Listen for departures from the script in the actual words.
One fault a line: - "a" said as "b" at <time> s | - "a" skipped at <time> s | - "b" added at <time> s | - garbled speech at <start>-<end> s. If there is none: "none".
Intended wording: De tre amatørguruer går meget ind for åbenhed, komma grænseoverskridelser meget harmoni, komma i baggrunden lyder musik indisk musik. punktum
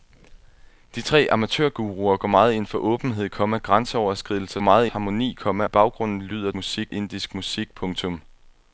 none